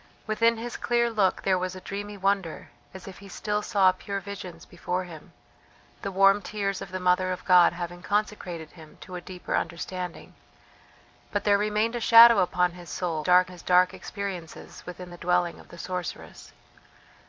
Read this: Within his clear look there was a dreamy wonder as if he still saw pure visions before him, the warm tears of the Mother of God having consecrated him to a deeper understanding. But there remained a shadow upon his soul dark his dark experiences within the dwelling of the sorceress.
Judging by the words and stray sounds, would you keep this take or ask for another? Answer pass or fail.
pass